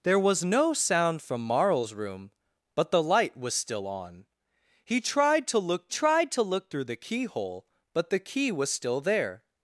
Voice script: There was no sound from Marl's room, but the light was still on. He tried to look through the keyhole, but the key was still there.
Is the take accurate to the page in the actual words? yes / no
no